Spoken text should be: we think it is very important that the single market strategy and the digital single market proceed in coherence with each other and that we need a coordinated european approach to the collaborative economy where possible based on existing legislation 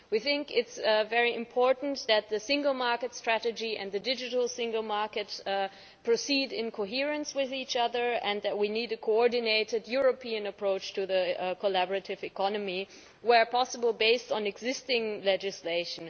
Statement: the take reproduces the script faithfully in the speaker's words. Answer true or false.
true